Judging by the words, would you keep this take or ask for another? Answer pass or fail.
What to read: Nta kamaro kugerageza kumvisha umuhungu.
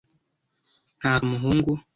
fail